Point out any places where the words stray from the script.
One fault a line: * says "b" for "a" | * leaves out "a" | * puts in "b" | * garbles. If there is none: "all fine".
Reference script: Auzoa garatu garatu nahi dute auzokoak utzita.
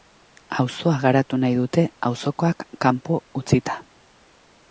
* leaves out "garatu"
* puts in "kanpo"